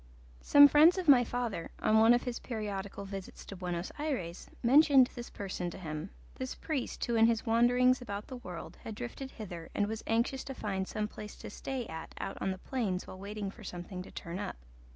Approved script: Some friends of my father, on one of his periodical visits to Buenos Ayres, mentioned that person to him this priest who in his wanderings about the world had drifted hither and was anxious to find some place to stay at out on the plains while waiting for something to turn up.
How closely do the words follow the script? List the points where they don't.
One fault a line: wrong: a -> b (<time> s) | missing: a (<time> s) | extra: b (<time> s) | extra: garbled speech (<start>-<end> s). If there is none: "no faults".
wrong: that -> this (5.1 s)